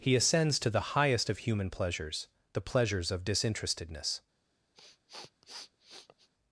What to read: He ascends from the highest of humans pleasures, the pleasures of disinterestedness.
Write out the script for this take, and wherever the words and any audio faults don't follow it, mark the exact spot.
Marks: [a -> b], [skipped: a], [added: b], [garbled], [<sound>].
He ascends [from -> to] the highest of [humans -> human] pleasures, the pleasures of disinterestedness. [sniff]